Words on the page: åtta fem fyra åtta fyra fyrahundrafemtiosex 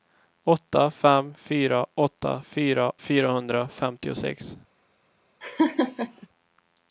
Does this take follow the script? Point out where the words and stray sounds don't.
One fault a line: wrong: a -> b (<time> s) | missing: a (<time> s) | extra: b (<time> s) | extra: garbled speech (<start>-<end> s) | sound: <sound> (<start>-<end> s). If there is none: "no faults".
sound: laugh (5.4-6.3 s)